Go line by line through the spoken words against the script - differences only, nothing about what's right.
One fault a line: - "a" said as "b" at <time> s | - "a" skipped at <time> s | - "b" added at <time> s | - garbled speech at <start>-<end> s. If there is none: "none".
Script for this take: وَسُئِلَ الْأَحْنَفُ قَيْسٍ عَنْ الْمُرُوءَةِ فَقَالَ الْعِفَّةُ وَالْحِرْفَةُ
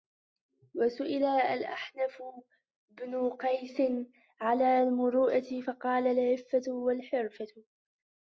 - "بْنُ" added at 2.9 s